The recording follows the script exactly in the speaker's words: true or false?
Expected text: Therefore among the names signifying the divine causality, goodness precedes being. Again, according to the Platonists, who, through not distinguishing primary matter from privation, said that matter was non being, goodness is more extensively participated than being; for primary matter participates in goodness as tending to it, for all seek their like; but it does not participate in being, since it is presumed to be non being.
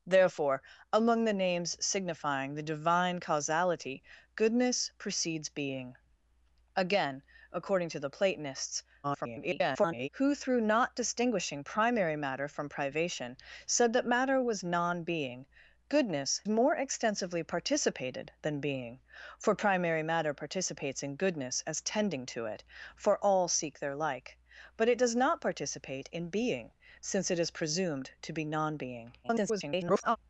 false